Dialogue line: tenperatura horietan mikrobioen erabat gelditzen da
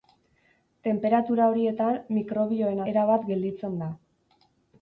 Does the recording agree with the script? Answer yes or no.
yes